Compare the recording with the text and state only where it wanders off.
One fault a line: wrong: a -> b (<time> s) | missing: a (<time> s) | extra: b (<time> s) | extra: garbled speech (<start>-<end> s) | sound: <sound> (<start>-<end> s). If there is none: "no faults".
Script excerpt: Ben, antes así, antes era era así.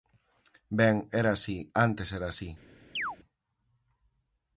wrong: antes -> era (1.2 s)
missing: era (2.3 s)
sound: chirp (3.0-3.2 s)